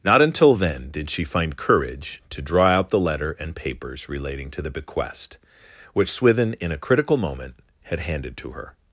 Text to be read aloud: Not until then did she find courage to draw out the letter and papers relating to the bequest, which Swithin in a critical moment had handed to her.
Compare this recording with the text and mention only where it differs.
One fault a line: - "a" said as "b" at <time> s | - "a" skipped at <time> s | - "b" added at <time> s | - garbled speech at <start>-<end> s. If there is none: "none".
none